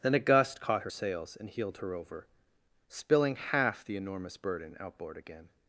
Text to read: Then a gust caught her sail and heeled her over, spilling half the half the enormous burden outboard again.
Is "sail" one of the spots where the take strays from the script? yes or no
yes